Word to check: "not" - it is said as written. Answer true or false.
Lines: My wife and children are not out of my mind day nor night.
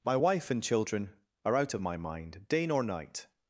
false